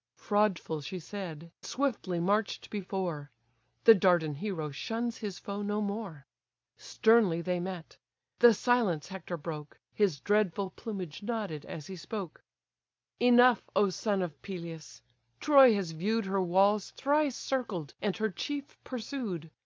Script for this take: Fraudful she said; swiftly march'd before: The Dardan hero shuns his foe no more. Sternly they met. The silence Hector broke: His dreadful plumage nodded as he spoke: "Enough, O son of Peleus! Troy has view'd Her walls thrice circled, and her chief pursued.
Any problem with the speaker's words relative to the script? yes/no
no